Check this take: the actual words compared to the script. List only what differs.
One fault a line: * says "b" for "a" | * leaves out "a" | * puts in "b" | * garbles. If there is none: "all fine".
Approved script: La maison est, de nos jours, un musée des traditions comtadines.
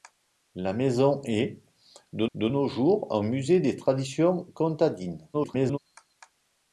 * puts in "de"
* garbles